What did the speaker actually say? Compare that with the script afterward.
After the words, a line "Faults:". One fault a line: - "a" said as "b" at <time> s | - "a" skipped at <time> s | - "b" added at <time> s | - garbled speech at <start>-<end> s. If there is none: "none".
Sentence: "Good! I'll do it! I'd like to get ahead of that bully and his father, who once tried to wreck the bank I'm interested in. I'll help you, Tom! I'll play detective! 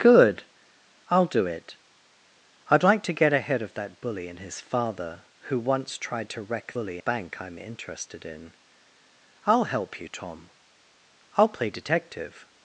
"Good! I'll do it! I'd like to get ahead of that bully and his father, who once tried to wreck bully bank I'm interested in. I'll help you, Tom! I'll play detective!
Faults:
- "the" said as "bully" at 6.7 s